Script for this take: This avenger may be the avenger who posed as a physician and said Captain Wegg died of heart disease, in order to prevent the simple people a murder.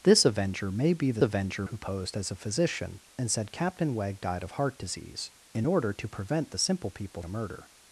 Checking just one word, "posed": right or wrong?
right